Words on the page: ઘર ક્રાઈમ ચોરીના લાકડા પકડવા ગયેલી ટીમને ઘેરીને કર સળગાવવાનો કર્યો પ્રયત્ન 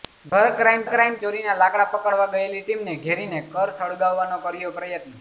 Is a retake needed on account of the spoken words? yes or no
yes